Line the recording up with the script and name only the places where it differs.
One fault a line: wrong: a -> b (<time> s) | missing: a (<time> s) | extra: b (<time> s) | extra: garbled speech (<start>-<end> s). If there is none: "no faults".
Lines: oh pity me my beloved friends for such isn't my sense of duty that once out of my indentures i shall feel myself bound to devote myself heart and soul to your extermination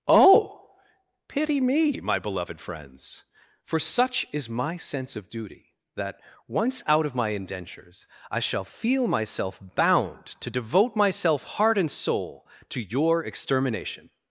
wrong: isn't -> is (4.3 s)